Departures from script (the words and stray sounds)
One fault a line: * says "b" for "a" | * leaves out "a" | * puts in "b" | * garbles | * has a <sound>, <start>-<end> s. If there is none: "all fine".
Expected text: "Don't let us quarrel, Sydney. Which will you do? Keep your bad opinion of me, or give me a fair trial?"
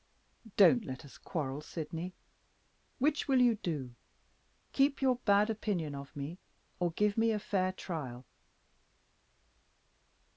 all fine